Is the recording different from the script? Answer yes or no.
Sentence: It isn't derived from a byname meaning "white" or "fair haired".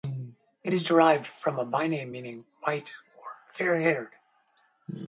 yes